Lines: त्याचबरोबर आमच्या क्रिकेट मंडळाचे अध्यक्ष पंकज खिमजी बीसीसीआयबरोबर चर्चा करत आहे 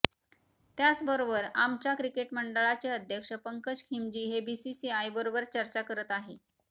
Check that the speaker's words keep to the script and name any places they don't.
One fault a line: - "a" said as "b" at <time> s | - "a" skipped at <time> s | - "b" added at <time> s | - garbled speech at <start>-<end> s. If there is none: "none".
- "हे" added at 4.3 s